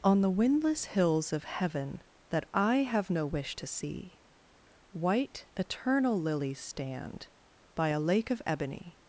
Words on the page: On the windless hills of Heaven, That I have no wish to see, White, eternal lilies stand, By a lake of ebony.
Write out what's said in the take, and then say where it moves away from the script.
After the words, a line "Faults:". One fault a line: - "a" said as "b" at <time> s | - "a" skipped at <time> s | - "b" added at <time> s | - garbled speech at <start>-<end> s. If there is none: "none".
On the windless hills of Heaven, That I have no wish to see, White, eternal lilies stand, By a lake of ebony.
Faults:
none